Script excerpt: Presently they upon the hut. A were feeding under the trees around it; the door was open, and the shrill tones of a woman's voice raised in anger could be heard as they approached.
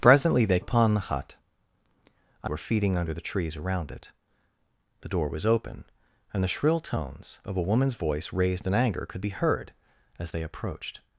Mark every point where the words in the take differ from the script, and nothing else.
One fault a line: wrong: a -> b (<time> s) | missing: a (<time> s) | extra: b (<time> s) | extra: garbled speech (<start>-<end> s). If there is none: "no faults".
no faults